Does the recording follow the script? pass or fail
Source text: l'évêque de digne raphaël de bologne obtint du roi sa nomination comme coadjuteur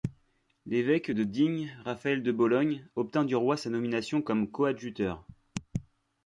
pass